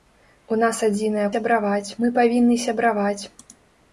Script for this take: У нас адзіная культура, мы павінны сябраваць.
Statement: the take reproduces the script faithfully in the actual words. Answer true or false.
false